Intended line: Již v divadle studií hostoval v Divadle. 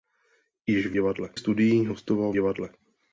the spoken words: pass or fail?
pass